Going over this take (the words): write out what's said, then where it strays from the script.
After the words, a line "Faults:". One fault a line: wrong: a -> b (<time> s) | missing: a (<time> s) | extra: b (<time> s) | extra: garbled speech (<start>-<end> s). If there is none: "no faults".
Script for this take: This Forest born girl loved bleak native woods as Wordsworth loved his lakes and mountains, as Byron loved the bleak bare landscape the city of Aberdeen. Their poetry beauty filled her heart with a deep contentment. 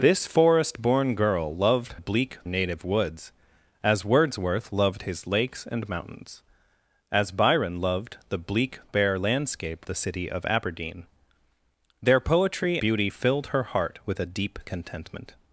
This Forest born girl loved bleak native woods as Wordsworth loved his lakes and mountains, as Byron loved the bleak bare landscape the city of Aberdeen. Their poetry beauty filled her heart with a deep contentment.
Faults:
no faults